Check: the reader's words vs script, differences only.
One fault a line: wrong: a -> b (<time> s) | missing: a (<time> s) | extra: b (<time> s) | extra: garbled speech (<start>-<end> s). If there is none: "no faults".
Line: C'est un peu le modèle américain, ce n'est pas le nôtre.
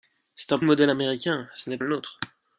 missing: peu (0.6 s)
missing: pas (1.8 s)